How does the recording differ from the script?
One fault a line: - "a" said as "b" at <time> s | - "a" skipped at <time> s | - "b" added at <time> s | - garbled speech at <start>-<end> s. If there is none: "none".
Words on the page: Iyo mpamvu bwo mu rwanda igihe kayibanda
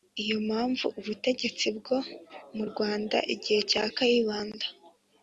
- "ubutegetsi" added at 1.0 s
- "cya" added at 3.7 s